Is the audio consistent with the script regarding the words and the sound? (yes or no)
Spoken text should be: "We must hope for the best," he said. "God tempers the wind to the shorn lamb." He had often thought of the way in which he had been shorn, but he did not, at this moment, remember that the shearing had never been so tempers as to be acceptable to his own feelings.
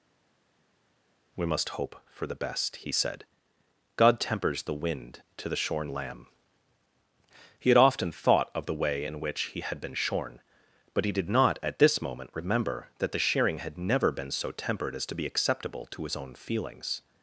no